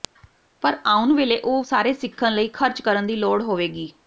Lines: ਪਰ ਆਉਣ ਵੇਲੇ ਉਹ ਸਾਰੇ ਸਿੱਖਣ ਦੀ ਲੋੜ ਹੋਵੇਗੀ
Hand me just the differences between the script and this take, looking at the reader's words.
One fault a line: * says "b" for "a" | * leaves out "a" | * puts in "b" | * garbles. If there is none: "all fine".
* puts in "ਲਈ ਖਰਚ ਕਰਨ"